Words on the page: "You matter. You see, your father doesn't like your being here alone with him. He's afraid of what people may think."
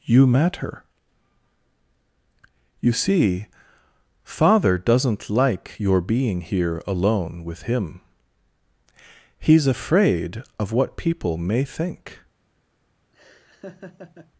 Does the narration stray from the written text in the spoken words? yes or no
yes